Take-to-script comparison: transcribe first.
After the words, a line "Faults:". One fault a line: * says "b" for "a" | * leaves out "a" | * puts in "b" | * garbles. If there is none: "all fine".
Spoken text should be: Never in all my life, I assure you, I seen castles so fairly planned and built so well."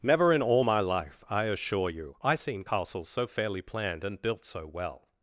Never in all my life, I assure you, I seen castles so fairly planned and built so well."
Faults:
all fine